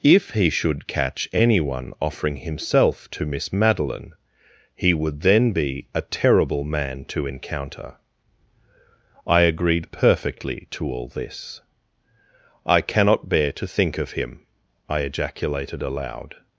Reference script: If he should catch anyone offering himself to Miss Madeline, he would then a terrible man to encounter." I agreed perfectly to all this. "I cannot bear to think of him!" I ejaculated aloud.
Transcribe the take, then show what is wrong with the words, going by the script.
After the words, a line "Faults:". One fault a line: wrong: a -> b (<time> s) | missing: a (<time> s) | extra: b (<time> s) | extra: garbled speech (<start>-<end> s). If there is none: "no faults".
If he should catch anyone offering himself to Miss Madeline, he would then be a terrible man to encounter." I agreed perfectly to all this. "I cannot bear to think of him!" I ejaculated aloud.
Faults:
extra: be (5.5 s)